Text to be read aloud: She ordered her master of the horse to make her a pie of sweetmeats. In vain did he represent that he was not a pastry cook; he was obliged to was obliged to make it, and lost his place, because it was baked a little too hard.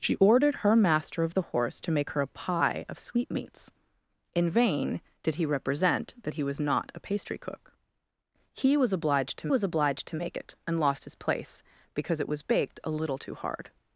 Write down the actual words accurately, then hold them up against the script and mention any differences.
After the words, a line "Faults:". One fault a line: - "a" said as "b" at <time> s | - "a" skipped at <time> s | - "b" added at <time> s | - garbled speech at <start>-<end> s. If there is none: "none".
She ordered her master of the horse to make her a pie of sweetmeats. In vain did he represent that he was not a pastry cook; he was obliged to was obliged to make it, and lost his place, because it was baked a little too hard.
Faults:
none